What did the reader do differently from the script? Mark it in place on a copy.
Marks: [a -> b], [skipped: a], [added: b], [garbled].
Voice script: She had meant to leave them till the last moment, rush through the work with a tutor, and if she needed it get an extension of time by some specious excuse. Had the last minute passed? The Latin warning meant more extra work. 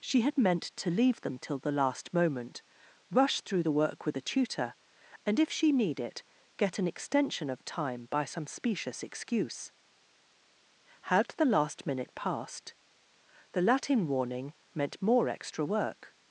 She had meant to leave them till the last moment, rush through the work with a tutor, and if she [needed -> need] it get an extension of time by some specious excuse. Had the last minute passed? The Latin warning meant more extra work.